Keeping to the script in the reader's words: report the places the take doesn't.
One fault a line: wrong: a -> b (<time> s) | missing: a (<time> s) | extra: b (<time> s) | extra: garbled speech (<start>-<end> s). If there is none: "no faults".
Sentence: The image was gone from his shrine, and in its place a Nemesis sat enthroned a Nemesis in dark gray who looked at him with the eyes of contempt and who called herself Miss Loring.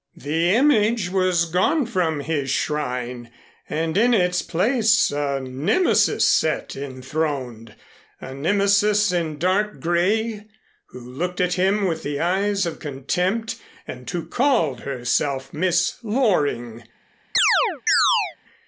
no faults